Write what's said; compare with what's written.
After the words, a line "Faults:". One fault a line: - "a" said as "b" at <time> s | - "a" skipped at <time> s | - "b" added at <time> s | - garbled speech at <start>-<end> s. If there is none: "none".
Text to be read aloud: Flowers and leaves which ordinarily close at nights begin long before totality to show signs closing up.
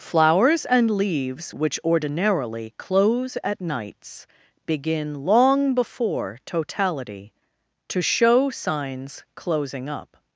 Flowers and leaves which ordinarily close at nights begin long before totality to show signs closing up.
Faults:
none